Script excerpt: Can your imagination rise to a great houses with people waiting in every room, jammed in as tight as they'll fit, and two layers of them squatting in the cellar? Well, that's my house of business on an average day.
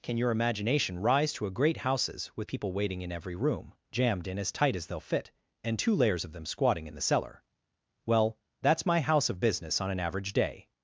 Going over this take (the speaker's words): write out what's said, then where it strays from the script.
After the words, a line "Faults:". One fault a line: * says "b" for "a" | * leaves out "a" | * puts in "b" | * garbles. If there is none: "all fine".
Can your imagination rise to a great houses with people waiting in every room, jammed in as tight as they'll fit, and two layers of them squatting in the cellar? Well, that's my house of business on an average day.
Faults:
all fine